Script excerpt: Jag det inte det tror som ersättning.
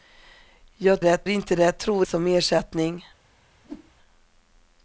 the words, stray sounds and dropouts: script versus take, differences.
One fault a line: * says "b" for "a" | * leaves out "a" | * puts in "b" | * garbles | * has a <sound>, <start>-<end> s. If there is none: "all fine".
* has a whoosh, 3.6-3.9 s